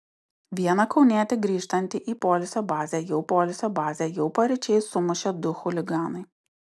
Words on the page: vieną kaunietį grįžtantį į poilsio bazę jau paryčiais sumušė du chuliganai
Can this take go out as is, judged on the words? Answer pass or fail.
fail